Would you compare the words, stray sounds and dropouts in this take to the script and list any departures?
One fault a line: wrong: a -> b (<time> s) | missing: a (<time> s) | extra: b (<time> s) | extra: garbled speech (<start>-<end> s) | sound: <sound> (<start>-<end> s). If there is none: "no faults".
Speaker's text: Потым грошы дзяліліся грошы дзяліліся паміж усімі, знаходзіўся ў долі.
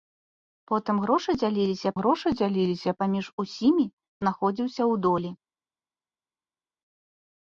no faults